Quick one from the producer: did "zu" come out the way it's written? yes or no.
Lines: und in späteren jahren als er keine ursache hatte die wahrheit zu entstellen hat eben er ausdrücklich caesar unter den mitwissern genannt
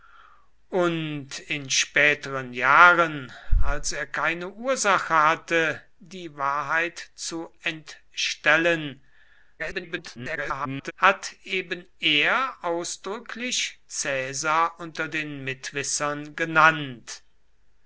yes